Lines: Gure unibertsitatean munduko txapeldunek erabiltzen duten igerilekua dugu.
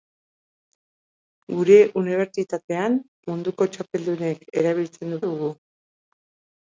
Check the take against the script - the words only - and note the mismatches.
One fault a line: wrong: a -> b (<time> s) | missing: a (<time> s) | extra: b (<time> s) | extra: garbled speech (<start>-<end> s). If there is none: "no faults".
missing: duten igerilekua (5.2 s)